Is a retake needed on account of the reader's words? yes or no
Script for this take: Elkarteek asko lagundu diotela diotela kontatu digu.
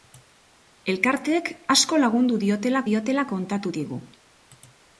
no